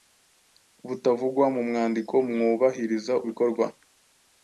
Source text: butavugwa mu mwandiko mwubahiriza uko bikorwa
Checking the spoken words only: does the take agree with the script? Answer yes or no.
no